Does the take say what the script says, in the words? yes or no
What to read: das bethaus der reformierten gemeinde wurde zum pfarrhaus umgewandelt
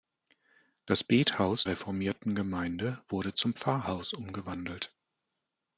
no